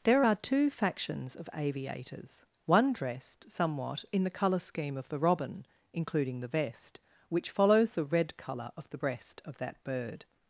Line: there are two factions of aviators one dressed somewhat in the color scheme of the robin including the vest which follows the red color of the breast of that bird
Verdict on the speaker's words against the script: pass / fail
pass